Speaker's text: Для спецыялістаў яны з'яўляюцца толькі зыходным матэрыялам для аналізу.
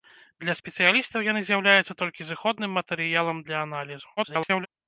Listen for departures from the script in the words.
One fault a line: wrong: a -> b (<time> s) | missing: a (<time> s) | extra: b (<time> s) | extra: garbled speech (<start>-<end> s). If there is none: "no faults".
extra: garbled speech (4.2-4.7 s)